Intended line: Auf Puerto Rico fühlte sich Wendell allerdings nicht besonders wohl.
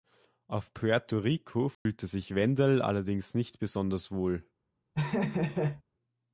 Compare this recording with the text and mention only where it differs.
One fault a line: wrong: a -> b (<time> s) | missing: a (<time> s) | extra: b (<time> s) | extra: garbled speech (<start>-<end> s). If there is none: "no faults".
no faults